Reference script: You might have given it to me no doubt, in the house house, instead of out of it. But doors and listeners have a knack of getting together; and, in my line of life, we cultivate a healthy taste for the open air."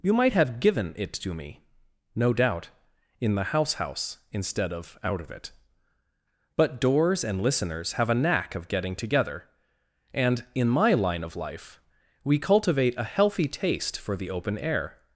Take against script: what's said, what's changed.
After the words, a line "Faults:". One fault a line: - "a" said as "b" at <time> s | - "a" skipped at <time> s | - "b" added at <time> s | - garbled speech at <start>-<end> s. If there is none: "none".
You might have given it to me no doubt, in the house house, instead of out of it. But doors and listeners have a knack of getting together; and, in my line of life, we cultivate a healthy taste for the open air."
Faults:
none